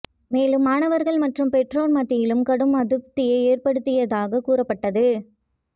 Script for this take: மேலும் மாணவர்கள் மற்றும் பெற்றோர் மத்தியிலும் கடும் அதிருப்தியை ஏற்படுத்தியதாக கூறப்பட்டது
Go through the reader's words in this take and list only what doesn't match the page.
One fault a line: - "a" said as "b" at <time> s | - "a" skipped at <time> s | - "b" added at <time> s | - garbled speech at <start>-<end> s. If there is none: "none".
none